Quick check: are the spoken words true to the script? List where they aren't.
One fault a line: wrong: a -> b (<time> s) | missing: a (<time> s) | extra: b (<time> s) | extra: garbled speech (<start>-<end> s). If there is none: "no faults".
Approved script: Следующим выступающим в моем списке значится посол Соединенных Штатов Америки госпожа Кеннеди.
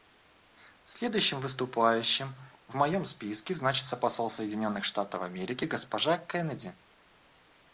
no faults